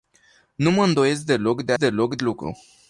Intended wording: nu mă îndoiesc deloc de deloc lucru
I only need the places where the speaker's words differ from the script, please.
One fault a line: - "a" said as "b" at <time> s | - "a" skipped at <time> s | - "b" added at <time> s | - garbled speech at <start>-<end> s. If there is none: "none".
none